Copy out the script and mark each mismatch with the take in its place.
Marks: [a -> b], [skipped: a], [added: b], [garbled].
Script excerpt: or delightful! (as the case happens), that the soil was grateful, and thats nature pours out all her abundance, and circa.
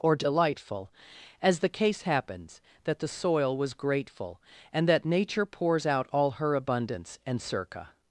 or delightful! (as the case happens), that the soil was grateful, and [thats -> that] nature pours out all her abundance, and circa.